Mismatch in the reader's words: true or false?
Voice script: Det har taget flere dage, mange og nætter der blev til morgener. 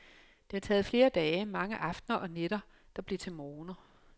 true